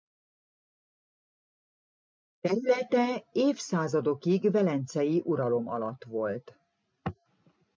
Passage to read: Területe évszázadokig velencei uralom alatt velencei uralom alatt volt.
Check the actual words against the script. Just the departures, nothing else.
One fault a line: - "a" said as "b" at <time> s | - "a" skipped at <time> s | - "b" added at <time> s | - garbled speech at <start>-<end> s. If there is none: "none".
- "velencei uralom alatt" skipped at 6.0 s